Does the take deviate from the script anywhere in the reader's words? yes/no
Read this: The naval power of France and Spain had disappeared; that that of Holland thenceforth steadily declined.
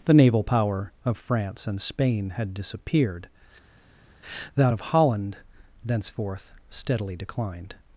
yes